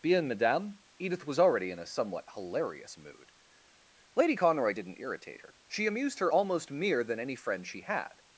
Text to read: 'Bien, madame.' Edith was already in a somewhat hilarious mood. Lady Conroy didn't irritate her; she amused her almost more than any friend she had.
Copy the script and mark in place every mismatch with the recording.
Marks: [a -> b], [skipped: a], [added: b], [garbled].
'Bien, madame.' Edith was already in a somewhat hilarious mood. Lady Conroy didn't irritate her; she amused her almost [more -> mere] than any friend she had.